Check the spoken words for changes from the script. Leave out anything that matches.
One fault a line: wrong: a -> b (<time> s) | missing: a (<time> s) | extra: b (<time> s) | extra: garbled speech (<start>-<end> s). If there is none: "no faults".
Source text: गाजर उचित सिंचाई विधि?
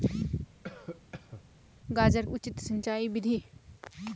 no faults